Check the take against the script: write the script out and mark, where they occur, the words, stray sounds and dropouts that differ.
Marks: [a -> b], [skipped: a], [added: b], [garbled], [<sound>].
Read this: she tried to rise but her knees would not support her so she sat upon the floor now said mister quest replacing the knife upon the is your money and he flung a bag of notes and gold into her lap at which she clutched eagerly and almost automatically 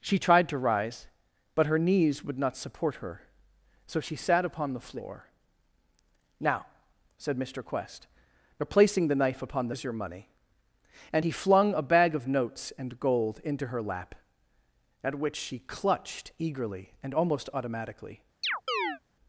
she tried to rise but her knees would not support her so she sat upon the floor now said mister quest replacing the knife upon the is your money and he flung a bag of notes and gold into her lap at which she clutched eagerly and almost automatically [chirp]